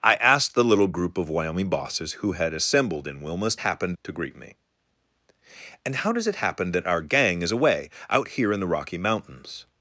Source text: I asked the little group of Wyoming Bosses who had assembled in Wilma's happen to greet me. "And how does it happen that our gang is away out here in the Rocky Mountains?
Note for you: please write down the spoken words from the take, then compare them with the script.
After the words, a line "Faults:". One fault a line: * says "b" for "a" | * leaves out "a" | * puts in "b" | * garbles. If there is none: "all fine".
I asked the little group of Wyoming Bosses who had assembled in Wilma's happen to greet me. "And how does it happen that our gang is away out here in the Rocky Mountains?
Faults:
all fine